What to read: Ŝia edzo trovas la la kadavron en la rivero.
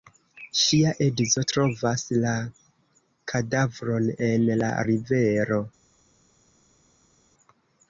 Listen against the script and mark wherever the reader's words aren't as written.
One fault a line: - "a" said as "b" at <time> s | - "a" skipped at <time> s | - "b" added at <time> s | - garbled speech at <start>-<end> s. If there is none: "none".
- "la" skipped at 2.3 s